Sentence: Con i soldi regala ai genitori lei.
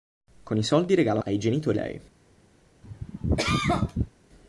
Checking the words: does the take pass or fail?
pass